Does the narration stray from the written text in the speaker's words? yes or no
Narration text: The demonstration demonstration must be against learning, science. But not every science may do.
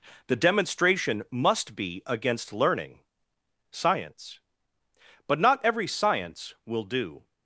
yes